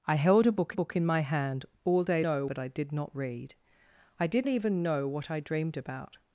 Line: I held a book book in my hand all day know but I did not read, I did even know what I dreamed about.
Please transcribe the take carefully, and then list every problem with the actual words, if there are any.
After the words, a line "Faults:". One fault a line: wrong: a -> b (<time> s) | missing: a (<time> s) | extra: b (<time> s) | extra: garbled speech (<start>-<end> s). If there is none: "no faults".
I held a book book in my hand all day know but I did not read, I did even know what I dreamed about.
Faults:
no faults